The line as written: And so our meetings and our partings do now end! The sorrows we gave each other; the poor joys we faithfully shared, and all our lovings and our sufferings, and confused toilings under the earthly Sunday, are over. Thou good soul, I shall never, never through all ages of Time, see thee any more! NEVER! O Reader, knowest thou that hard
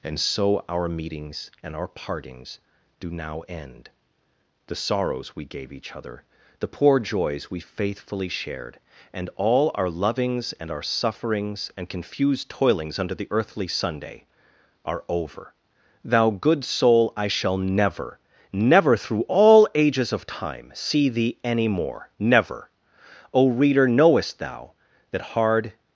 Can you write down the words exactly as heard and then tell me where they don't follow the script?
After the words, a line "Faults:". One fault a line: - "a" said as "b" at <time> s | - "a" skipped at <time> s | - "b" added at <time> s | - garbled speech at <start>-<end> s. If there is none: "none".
And so our meetings and our partings do now end! The sorrows we gave each other; the poor joys we faithfully shared, and all our lovings and our sufferings, and confused toilings under the earthly Sunday, are over. Thou good soul, I shall never, never through all ages of Time, see thee any more! NEVER! O Reader, knowest thou that hard
Faults:
none